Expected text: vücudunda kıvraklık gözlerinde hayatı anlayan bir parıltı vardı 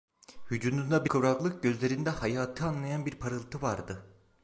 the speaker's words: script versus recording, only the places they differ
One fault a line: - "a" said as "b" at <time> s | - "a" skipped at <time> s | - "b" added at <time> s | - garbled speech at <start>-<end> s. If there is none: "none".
none